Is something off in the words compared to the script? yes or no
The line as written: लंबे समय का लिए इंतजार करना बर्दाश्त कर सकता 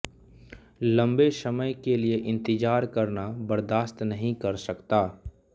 yes